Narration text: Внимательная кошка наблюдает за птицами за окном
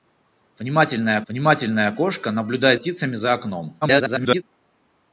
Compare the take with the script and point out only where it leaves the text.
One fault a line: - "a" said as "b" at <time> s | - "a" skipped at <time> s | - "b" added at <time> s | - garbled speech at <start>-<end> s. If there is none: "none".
- "внимательная" added at 1.3 s
- "за" skipped at 2.8 s
- garbled speech at 3.8-4.4 s